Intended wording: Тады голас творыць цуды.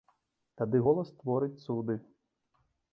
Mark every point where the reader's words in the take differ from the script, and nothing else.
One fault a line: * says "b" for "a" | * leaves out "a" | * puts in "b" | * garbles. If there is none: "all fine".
all fine